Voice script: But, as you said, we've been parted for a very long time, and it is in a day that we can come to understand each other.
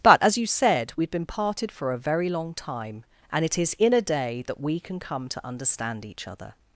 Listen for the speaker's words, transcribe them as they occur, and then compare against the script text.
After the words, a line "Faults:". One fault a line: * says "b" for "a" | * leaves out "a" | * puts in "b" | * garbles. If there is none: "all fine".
But, as you said, we've been parted for a very long time, and it is in a day that we can come to understand each other.
Faults:
all fine